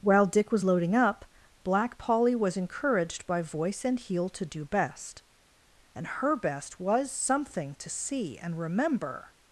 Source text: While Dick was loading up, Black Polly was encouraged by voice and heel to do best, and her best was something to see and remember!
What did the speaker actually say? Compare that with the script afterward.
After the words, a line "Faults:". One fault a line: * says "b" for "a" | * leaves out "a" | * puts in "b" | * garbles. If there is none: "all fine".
While Dick was loading up, Black Polly was encouraged by voice and heel to do best, and her best was something to see and remember!
Faults:
all fine